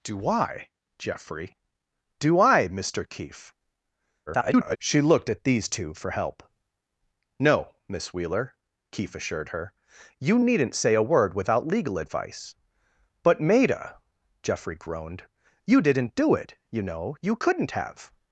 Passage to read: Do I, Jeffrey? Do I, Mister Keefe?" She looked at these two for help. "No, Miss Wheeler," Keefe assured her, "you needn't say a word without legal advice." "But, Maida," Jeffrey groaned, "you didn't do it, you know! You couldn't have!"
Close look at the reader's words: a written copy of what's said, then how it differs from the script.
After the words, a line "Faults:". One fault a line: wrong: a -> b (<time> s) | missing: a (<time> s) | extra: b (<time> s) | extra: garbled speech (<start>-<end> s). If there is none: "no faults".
Do I, Jeffrey? Do I, Mister Keefe?" [garbled] She looked at these two for help. "No, Miss Wheeler," Keefe assured her, "you needn't say a word without legal advice." "But, Maida," Jeffrey groaned, "you didn't do it, you know! You couldn't have!"
Faults:
extra: garbled speech (4.3-4.8 s)